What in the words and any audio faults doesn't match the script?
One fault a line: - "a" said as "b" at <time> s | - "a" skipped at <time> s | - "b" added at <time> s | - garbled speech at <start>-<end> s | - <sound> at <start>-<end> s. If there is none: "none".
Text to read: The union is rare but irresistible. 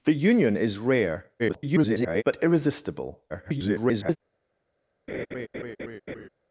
- garbled speech at 1.4-2.2 s
- garbled speech at 3.3-4.2 s
- laugh at 5.1-6.3 s